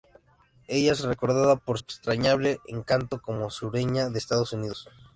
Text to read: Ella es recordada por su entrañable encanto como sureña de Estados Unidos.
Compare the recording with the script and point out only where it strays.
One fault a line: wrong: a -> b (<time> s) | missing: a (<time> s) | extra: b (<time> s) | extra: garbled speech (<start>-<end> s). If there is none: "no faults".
missing: su (1.8 s)